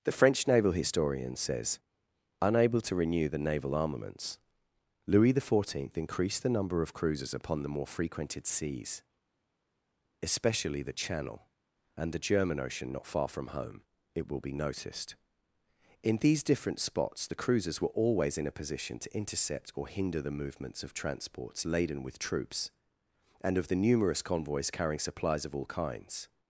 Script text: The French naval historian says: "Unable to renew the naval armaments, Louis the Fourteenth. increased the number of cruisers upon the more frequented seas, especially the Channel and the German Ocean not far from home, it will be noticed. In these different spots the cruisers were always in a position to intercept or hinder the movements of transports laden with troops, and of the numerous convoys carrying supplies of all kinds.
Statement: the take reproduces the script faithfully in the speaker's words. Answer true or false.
true